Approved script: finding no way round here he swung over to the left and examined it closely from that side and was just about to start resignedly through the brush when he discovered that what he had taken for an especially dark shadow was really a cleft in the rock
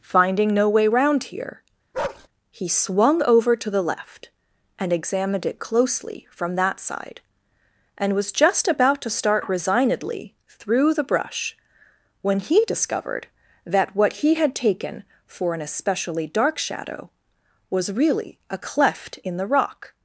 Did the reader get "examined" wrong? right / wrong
right